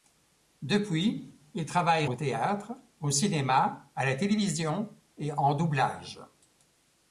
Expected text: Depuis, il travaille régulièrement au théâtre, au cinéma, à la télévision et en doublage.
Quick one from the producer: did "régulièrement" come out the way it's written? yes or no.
no